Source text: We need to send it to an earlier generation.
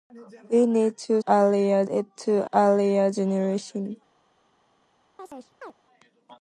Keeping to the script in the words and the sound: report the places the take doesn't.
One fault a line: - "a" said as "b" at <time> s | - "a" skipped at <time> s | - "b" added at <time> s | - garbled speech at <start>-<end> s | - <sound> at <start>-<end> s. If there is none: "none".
- "send" said as "earlier" at 1.3 s
- "an" skipped at 2.5 s
- chirp at 5.2-5.7 s